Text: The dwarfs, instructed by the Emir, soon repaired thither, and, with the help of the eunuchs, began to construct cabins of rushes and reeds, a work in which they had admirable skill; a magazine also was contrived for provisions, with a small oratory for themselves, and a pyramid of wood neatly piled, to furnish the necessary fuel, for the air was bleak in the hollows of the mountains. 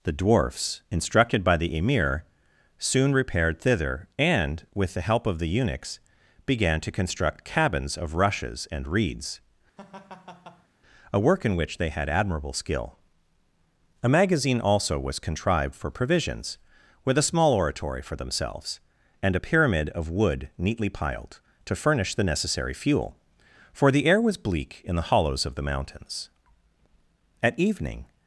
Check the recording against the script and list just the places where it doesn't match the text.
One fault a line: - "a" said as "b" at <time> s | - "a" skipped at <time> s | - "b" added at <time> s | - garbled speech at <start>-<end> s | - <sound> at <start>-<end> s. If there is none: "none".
- laugh at 9.8-10.7 s
- "At evening" added at 27.4 s